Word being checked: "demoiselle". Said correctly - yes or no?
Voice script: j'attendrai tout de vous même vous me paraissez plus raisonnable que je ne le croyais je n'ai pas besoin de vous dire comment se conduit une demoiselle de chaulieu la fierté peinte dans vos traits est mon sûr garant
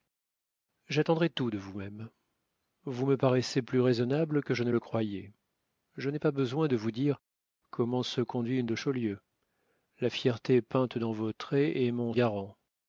no